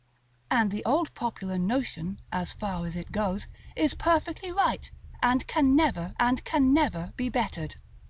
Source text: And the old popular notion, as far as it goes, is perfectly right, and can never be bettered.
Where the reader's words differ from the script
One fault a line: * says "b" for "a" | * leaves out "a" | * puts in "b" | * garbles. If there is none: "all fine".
* puts in "and can never"